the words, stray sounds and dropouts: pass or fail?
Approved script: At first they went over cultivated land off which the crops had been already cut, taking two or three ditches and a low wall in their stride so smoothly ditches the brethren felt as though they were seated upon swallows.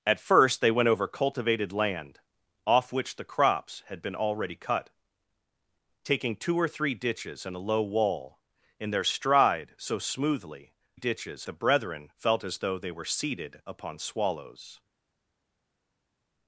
pass